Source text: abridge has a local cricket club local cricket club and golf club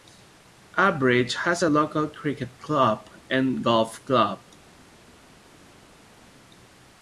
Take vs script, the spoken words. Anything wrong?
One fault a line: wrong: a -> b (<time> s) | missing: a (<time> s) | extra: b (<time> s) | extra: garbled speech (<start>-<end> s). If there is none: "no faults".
missing: local cricket club (3.1 s)